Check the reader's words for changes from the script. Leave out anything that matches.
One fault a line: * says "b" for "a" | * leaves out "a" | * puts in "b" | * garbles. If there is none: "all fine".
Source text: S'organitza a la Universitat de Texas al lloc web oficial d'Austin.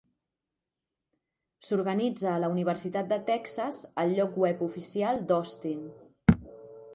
all fine